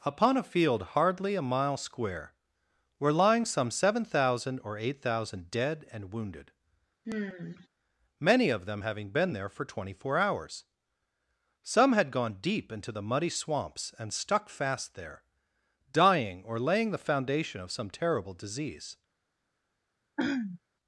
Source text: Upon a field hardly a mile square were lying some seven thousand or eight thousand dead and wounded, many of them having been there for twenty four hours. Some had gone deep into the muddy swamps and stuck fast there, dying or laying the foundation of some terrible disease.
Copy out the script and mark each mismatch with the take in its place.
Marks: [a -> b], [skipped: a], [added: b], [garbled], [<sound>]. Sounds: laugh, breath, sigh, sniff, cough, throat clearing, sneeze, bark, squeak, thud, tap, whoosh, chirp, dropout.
Upon a field hardly a mile square were lying some seven thousand or eight thousand dead and wounded, [sigh] many of them having been there for twenty four hours. Some had gone deep into the muddy swamps and stuck fast there, dying or laying the foundation of some terrible disease. [throat clearing]